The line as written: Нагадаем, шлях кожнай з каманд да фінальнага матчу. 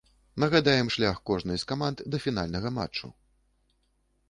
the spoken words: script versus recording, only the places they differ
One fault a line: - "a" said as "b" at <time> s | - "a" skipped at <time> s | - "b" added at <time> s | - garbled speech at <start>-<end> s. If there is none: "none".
none